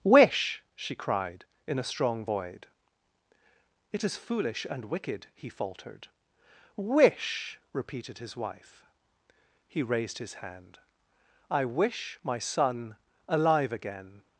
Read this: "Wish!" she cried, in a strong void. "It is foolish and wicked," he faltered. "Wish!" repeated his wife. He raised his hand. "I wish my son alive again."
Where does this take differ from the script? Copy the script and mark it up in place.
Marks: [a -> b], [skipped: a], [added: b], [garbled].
"Wish!" she cried, in a strong void. "It is foolish and wicked," he faltered. "Wish!" repeated his wife. He raised his hand. "I wish my son alive again."